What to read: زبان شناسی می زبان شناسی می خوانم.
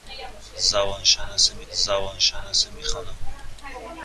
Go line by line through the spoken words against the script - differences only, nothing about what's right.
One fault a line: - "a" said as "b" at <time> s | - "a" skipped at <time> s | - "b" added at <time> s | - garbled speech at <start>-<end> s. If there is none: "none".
none